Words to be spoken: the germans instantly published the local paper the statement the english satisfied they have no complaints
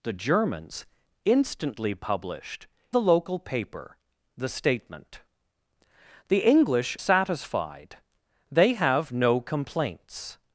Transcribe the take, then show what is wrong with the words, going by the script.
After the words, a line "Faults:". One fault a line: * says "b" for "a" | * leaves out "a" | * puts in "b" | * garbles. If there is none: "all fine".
the germans instantly published the local paper the statement the english satisfied they have no complaints
Faults:
all fine